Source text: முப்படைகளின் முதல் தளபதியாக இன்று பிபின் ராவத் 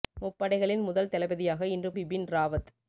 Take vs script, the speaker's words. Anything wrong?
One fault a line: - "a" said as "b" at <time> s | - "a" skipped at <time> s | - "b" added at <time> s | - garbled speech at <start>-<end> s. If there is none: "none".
none